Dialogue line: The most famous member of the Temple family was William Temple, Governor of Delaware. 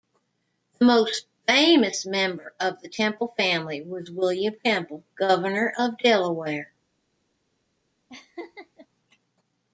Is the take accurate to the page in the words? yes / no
yes